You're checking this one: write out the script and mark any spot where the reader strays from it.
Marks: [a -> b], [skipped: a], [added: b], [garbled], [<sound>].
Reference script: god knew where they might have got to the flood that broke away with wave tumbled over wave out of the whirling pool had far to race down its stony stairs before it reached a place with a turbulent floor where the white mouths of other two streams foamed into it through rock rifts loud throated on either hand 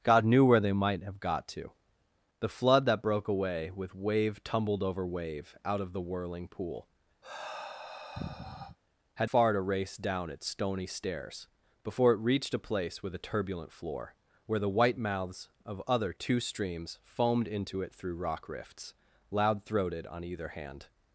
god knew where they might have got to the flood that broke away with wave tumbled over wave out of the whirling pool [sigh] had far to race down its stony stairs before it reached a place with a turbulent floor where the white mouths of other two streams foamed into it through rock rifts loud throated on either hand